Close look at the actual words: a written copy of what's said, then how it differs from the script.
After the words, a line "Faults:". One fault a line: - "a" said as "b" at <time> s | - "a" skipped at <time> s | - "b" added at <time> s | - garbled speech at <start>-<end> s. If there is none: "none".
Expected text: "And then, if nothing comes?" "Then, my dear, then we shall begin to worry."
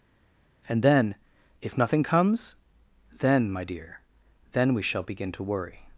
"And then, if nothing comes?" "Then, my dear, then we shall begin to worry."
Faults:
none